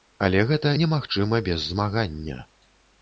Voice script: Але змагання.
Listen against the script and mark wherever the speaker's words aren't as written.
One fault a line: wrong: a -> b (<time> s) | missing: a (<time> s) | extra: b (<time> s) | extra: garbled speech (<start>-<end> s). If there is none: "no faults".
extra: гэта немагчыма без (0.5 s)